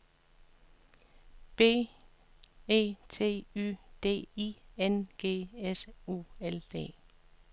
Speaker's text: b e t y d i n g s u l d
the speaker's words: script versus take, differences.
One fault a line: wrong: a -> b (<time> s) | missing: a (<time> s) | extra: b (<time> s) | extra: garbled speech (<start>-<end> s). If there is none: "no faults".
no faults